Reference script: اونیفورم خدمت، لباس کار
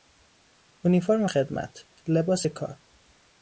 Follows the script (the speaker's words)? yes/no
yes